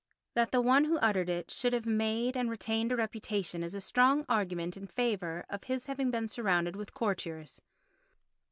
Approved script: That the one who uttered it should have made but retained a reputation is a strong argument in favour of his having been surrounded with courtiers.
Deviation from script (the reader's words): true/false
true